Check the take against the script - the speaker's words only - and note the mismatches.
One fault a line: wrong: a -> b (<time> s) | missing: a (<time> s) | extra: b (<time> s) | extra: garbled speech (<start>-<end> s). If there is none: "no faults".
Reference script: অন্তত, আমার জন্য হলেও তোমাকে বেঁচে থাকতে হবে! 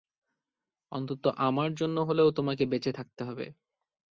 no faults